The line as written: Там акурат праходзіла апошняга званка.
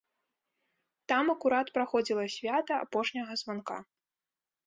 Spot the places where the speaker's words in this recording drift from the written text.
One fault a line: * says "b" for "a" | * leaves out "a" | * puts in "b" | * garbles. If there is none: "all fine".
* puts in "свята"